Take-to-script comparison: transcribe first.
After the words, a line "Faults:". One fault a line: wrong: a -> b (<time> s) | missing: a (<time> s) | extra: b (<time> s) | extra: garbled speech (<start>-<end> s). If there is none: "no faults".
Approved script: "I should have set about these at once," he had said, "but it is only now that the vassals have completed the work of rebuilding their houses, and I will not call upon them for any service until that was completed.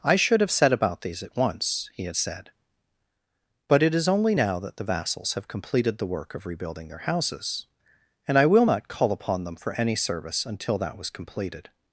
"I should have set about these at once," he had said, "but it is only now that the vassals have completed the work of rebuilding their houses, and I will not call upon them for any service until that was completed.
Faults:
no faults